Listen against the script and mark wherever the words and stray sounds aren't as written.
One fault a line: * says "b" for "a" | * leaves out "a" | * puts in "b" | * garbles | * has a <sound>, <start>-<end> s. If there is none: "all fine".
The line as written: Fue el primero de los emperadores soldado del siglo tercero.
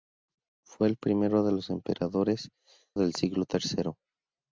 * leaves out "soldado"